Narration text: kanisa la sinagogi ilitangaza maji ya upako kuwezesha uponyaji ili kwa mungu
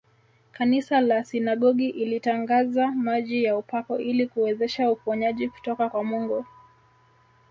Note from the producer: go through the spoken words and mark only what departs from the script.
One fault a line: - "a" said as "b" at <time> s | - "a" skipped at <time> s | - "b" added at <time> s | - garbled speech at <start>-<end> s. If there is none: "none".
- "ili" added at 4.0 s
- "ili" said as "kutoka" at 5.5 s